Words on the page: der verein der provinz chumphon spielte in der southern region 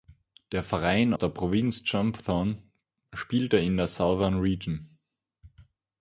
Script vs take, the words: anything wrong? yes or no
no